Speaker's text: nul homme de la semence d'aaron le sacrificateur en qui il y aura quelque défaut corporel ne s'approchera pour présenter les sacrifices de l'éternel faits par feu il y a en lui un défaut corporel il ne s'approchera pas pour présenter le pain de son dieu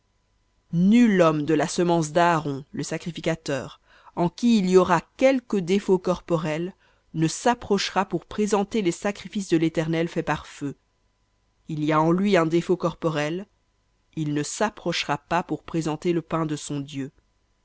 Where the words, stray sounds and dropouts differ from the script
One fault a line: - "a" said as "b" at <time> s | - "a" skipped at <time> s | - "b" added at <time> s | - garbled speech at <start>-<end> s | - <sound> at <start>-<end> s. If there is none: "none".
none